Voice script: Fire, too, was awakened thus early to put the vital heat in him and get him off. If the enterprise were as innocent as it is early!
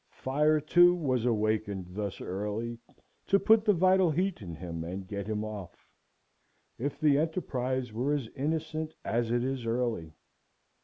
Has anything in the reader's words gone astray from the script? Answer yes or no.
no